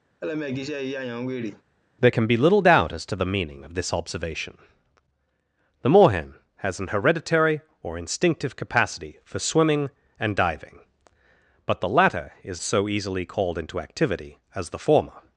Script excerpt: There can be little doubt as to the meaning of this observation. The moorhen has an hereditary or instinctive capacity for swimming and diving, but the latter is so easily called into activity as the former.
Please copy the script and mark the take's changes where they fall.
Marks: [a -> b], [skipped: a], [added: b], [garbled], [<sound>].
[laugh] There can be little doubt as to the meaning of this observation. The moorhen has an hereditary or instinctive capacity for swimming and diving, but the latter is so easily called into activity as the former.